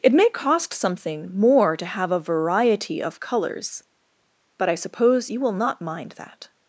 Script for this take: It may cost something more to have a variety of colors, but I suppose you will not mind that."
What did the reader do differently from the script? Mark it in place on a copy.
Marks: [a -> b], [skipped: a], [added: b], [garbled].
It may cost something more to have a variety of colors, but I suppose you will not mind that."